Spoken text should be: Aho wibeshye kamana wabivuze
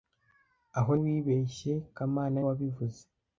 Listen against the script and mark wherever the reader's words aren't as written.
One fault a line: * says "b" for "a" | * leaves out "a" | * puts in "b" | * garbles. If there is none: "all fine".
all fine